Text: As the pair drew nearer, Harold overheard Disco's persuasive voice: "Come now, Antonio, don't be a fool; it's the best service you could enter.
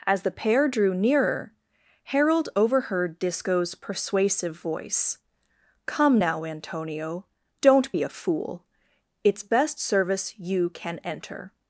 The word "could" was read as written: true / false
false